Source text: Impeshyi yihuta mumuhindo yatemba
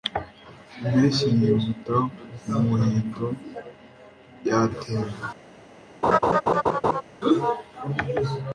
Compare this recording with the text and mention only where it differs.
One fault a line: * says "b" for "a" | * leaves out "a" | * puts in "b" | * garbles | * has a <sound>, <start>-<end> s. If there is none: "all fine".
* has a laugh, 6.0-7.0 s